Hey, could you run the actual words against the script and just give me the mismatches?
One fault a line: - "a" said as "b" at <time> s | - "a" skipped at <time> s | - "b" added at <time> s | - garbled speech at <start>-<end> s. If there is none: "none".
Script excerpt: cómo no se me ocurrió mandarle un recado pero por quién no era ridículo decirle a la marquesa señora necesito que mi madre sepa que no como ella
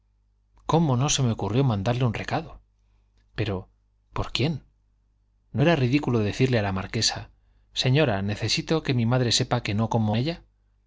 none